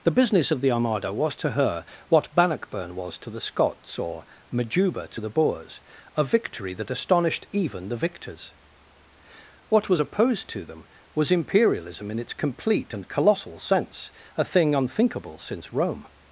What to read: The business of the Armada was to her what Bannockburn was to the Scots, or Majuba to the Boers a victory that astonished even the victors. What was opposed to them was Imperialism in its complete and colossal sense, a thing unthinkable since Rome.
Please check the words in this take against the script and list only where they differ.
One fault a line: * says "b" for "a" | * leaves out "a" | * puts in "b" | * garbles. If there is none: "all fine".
all fine